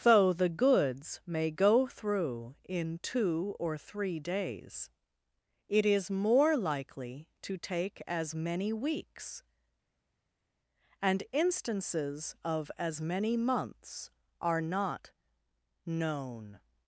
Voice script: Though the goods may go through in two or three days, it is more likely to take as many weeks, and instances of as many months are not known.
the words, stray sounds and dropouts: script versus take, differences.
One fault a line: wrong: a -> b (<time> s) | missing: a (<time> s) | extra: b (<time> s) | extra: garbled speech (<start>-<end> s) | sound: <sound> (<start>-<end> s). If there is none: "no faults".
no faults